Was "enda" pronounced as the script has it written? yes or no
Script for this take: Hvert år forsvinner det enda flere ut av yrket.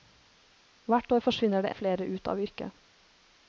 no